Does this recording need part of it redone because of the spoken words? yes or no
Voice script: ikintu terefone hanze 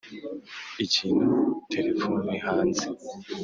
no